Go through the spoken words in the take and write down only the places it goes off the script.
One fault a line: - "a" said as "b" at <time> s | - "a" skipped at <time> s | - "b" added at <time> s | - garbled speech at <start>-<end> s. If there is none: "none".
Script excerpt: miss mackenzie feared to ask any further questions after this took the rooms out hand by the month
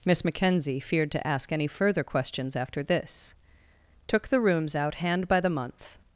none